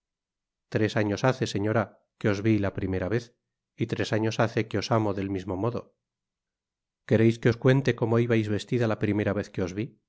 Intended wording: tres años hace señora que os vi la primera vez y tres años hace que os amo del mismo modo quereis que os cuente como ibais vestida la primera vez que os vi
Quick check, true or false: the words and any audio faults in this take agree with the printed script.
true